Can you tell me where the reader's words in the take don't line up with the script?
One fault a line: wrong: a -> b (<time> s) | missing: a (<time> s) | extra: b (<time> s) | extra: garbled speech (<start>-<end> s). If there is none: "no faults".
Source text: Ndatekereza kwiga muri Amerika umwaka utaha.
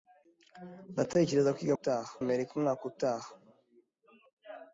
wrong: muri -> utaha (1.8 s)